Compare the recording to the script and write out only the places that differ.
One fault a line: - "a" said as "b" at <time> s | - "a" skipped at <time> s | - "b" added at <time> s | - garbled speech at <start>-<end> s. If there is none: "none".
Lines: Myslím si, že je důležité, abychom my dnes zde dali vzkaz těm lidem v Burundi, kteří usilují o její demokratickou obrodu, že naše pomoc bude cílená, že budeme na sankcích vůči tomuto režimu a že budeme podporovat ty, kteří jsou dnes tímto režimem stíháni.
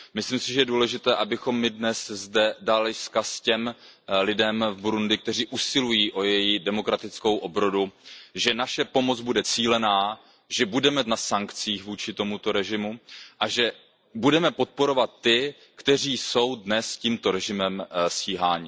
none